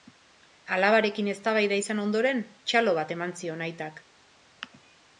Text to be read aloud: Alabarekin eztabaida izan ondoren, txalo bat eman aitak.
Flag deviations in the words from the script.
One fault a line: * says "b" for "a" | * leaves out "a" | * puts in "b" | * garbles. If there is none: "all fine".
* puts in "zion"